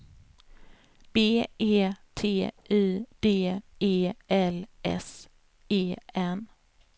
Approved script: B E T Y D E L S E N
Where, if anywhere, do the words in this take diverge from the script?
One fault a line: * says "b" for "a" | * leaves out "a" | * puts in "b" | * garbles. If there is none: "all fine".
all fine